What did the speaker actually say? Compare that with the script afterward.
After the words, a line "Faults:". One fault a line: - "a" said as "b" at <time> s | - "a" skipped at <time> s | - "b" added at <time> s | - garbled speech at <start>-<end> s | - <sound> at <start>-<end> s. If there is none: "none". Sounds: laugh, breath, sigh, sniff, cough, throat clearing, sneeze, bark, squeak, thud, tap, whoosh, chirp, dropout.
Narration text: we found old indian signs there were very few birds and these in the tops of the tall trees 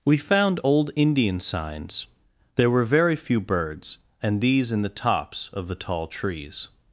we found old indian signs there were very few birds and these in the tops of the tall trees
Faults:
none